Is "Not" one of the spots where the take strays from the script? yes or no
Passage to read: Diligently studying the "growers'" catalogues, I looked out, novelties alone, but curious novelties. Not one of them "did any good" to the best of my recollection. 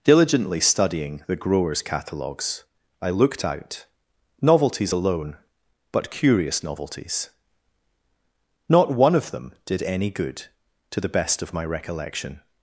no